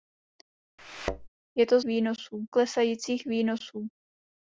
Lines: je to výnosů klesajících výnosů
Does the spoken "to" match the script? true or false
true